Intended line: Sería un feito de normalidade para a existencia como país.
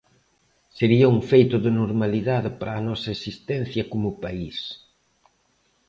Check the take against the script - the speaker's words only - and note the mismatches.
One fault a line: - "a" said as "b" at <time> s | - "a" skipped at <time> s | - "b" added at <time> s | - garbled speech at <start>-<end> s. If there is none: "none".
- "nosa" added at 2.9 s